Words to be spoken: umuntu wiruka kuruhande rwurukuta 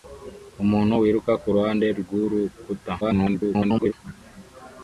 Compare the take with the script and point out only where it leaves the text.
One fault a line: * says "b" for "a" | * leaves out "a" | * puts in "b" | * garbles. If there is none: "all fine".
* garbles